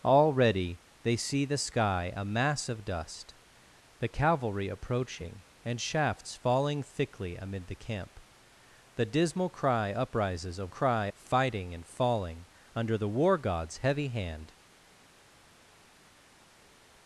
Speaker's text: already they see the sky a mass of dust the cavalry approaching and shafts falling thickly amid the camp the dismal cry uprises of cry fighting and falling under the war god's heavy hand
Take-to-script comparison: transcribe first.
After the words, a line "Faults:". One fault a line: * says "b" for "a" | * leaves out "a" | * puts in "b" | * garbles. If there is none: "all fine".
already they see the sky a mass of dust the cavalry approaching and shafts falling thickly amid the camp the dismal cry uprises of cry fighting and falling under the war god's heavy hand
Faults:
all fine